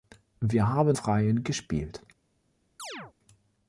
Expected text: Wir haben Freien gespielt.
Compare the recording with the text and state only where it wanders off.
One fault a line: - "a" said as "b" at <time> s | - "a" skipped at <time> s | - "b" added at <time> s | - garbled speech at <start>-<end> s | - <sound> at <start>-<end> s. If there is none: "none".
- chirp at 2.8-3.1 s